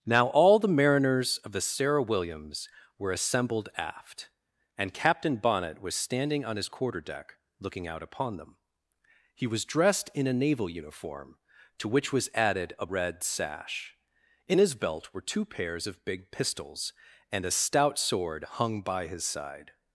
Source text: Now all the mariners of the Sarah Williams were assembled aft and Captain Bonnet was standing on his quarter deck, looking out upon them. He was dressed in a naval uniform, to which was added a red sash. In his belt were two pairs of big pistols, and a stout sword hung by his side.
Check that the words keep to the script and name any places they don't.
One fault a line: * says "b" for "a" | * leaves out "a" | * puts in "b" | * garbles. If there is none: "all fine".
all fine